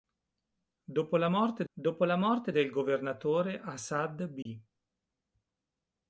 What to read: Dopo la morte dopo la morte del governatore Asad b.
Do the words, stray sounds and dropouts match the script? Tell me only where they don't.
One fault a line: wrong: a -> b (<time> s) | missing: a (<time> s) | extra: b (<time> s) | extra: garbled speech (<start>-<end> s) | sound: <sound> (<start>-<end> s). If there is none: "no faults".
sound: dropout (4.4-4.5 s)